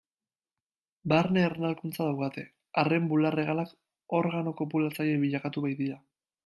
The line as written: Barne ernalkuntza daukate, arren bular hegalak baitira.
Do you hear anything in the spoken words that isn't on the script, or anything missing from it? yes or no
yes